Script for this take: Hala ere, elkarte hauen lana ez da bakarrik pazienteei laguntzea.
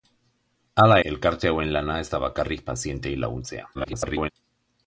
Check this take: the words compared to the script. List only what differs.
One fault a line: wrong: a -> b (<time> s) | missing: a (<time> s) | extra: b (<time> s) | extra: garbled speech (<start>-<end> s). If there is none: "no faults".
missing: ere (0.9 s)
extra: garbled speech (3.7-4.3 s)